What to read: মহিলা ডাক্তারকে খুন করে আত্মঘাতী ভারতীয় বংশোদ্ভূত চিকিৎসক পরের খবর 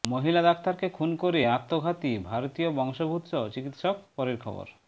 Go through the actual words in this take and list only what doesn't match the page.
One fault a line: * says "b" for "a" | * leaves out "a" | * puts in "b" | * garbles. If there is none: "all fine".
all fine